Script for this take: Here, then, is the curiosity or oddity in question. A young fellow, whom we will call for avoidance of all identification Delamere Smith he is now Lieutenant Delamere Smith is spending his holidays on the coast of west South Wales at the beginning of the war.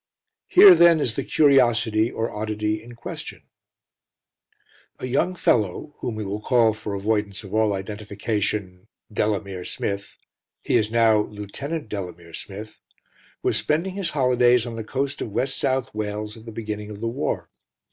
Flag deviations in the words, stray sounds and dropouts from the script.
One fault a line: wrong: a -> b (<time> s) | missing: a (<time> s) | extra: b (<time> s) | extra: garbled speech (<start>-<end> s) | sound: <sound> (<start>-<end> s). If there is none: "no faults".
wrong: is -> was (13.4 s)